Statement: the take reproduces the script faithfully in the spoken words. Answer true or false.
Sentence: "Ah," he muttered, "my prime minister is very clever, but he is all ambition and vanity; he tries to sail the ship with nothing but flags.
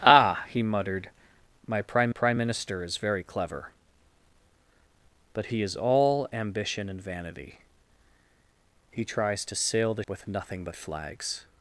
false